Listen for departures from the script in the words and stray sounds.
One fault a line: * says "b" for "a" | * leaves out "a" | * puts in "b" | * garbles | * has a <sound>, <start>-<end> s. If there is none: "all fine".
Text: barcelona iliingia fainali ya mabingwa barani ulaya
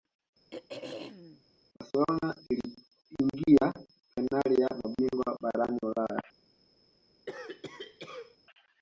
* has a throat clearing, 0.5-1.4 s
* has a cough, 7.3-8.4 s